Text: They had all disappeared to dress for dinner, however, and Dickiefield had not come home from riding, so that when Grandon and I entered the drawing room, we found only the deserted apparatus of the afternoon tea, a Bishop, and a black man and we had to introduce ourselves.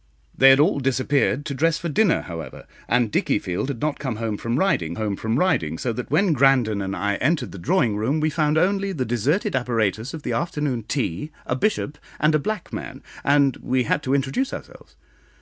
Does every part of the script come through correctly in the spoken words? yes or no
no